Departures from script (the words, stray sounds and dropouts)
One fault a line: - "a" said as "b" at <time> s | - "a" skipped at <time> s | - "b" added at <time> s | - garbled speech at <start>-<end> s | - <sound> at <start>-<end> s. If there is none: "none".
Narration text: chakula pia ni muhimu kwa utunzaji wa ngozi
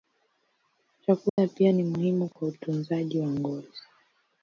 - dropout at 1.3-1.4 s
- dropout at 2.3-2.4 s